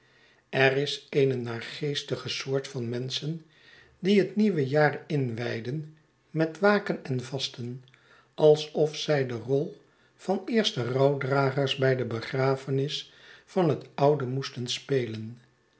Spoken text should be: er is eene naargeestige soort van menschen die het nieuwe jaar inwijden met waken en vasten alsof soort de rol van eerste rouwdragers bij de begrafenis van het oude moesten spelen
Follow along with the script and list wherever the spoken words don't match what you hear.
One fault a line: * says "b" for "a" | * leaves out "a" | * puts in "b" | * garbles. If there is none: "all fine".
* says "zij" for "soort"